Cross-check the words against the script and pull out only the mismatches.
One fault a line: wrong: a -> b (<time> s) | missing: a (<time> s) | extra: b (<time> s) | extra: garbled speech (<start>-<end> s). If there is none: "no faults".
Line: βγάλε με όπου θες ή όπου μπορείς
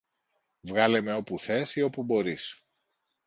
no faults